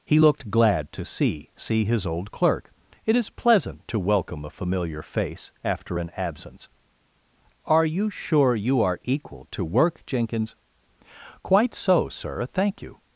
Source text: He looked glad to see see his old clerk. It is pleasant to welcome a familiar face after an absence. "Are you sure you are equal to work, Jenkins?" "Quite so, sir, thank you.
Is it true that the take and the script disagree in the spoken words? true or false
false